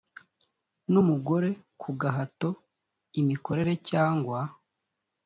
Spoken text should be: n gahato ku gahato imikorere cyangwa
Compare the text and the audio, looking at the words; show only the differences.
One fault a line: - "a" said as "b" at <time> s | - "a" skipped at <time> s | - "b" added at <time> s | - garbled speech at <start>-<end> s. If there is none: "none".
- "gahato" said as "umugore" at 1.0 s